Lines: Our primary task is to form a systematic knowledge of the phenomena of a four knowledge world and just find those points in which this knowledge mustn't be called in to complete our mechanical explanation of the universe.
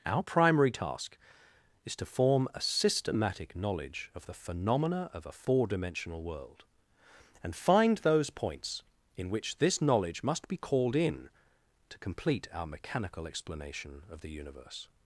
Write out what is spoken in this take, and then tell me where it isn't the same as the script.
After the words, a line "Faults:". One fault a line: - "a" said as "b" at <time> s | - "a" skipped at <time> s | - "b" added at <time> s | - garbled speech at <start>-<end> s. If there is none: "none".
Our primary task is to form a systematic knowledge of the phenomena of a four dimensional world and find those points in which this knowledge must be called in to complete our mechanical explanation of the universe.
Faults:
- "knowledge" said as "dimensional" at 5.7 s
- "just" skipped at 7.5 s
- "mustn't" said as "must" at 10.2 s